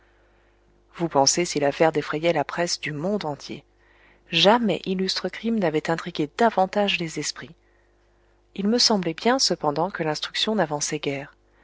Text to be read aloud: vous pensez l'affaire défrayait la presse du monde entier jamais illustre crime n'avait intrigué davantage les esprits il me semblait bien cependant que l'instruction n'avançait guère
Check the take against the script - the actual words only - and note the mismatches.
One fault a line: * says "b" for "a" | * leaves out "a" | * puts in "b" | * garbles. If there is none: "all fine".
* puts in "si"